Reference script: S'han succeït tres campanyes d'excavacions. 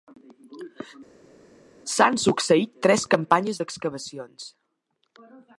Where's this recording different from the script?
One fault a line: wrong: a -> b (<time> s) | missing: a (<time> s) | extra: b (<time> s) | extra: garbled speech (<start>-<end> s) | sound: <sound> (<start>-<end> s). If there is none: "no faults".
no faults